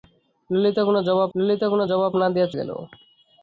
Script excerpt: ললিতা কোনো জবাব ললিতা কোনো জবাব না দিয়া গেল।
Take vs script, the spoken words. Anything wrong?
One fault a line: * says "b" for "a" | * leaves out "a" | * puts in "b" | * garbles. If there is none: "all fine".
all fine